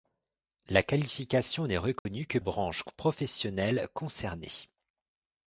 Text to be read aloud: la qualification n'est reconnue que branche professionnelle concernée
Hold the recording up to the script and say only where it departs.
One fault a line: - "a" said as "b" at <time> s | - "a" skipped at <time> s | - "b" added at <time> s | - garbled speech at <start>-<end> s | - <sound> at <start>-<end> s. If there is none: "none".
- dropout at 2.0-2.1 s